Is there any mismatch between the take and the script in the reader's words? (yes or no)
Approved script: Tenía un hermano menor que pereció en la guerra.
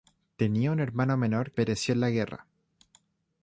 yes